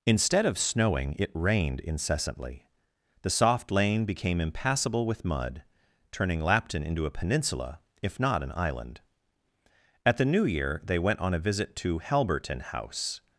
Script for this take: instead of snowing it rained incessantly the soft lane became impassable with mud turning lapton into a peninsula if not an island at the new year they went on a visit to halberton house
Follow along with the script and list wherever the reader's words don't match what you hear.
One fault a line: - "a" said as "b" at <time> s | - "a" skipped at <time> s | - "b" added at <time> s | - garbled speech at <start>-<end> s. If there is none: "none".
none